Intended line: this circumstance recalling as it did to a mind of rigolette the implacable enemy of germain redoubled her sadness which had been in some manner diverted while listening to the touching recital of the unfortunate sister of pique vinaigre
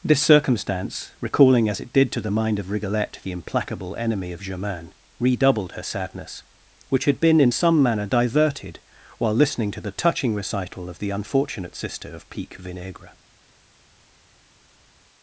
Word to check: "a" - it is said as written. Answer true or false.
false